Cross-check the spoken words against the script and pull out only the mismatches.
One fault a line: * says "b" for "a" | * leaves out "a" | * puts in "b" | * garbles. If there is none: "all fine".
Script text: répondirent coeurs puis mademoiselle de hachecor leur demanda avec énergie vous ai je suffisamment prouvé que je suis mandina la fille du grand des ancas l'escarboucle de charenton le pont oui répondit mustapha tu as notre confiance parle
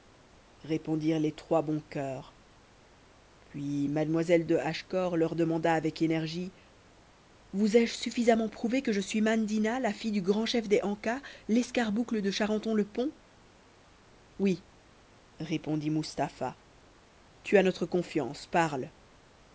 * puts in "les trois bons"
* puts in "chef"